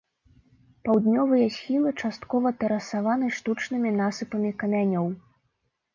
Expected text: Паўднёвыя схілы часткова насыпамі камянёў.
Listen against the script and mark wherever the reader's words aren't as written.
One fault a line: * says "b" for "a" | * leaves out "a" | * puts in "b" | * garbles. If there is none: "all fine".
* puts in "тэрасаваны штучнымі"